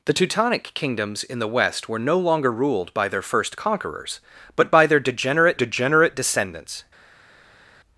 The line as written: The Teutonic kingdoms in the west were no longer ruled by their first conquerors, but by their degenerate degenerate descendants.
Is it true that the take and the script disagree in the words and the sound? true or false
false